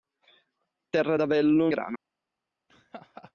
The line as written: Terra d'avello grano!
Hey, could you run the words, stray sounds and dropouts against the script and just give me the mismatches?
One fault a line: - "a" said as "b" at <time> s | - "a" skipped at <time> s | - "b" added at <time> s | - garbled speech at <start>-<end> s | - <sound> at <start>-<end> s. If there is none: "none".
- laugh at 2.7-3.3 s